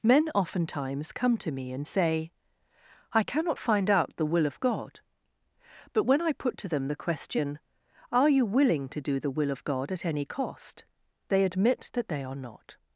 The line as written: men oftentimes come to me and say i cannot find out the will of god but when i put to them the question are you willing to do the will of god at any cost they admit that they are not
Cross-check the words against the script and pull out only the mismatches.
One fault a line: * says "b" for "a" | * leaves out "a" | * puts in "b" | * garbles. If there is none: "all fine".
all fine